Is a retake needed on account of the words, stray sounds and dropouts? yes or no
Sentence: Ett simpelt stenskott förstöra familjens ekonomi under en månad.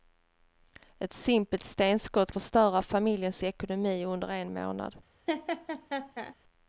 yes